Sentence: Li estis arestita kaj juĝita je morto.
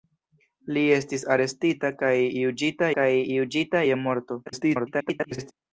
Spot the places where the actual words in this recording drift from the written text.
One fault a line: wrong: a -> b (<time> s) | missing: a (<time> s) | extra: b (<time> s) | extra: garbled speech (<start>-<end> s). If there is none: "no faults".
extra: kaj juĝita (3.0 s)
extra: garbled speech (4.5-5.5 s)